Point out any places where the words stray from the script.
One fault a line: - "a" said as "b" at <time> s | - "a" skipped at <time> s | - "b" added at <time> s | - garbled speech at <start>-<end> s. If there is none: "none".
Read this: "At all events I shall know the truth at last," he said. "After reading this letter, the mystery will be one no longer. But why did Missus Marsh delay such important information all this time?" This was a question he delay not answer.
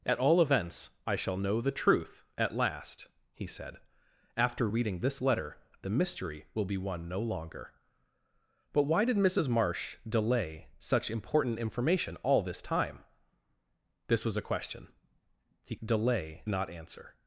none